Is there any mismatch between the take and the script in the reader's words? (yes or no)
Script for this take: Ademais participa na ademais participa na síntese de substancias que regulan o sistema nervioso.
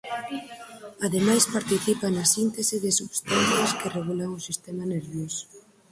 yes